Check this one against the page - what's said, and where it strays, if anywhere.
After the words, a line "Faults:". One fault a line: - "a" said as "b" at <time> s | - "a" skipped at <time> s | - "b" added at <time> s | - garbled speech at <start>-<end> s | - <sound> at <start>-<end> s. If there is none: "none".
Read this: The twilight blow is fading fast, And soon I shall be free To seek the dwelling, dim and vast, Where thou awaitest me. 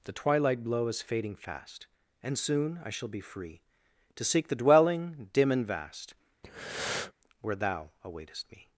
The twilight blow is fading fast, And soon I shall be free To seek the dwelling, dim and vast, Where thou awaitest me.
Faults:
- breath at 6.4-7.1 s